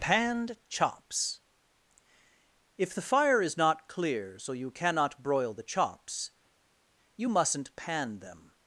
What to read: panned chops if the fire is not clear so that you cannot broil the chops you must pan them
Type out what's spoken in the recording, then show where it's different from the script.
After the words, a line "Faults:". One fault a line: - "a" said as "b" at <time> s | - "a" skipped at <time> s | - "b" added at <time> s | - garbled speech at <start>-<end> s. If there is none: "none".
panned chops if the fire is not clear so you cannot broil the chops you mustn't pan them
Faults:
- "that" skipped at 4.5 s
- "must" said as "mustn't" at 7.3 s